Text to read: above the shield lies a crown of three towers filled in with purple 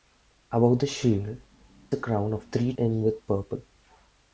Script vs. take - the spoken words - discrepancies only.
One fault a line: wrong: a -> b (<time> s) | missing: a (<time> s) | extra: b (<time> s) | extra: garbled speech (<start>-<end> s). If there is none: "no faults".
missing: lies (1.4 s)
missing: towers filled (2.7 s)